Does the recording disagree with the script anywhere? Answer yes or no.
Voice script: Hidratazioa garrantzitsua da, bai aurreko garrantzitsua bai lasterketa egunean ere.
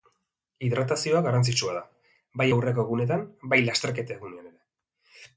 yes